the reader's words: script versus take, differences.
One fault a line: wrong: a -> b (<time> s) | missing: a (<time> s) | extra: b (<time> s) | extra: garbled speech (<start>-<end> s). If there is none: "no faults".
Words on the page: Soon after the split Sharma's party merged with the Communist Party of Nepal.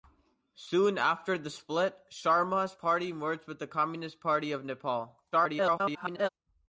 extra: garbled speech (5.3-6.3 s)